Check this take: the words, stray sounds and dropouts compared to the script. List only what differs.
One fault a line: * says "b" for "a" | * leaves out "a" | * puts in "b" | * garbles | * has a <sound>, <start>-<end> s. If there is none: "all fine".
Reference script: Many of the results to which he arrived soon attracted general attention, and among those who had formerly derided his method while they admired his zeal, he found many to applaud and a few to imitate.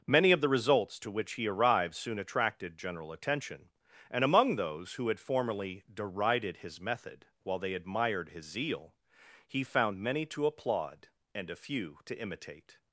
all fine